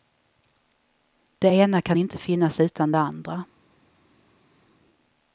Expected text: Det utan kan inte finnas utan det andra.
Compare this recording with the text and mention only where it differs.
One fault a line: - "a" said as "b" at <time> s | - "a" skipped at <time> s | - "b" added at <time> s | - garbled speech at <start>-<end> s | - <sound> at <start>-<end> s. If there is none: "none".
- "utan" said as "ena" at 1.5 s